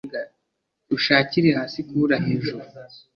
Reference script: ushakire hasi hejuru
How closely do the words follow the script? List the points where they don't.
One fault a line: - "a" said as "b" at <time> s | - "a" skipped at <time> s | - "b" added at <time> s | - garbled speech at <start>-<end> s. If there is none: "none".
- "kubura" added at 1.9 s